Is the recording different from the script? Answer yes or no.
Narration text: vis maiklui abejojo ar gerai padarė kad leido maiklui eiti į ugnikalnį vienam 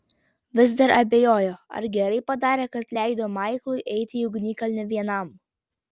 yes